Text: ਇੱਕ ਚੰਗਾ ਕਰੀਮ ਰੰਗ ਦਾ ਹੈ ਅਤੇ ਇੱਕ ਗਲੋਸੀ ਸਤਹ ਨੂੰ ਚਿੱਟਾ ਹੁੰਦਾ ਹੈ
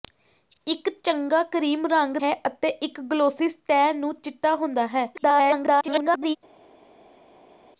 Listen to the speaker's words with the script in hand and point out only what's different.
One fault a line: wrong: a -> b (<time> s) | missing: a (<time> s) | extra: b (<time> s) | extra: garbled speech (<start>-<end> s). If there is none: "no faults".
missing: ਦਾ (2.2 s)
extra: garbled speech (5.1-6.4 s)